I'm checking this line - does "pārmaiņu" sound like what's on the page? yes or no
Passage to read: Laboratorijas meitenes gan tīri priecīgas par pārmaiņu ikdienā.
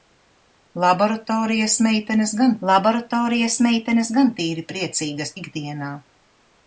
no